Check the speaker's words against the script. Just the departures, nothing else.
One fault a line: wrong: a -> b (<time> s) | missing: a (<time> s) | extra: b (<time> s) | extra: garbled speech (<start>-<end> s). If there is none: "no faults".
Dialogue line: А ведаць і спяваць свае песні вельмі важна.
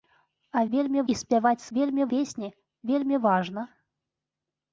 wrong: ведаць -> вельмі (0.8 s)
wrong: свае -> вельмі (1.8 s)